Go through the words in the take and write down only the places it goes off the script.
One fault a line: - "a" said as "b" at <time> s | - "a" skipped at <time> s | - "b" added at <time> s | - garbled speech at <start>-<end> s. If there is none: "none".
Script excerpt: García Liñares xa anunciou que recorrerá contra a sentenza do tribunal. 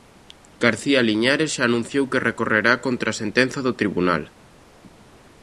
none